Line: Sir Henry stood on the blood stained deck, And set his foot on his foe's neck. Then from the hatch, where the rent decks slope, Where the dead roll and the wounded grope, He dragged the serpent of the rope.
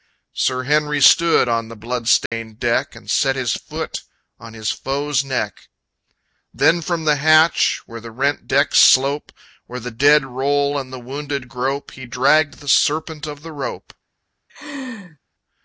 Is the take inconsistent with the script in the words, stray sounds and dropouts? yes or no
yes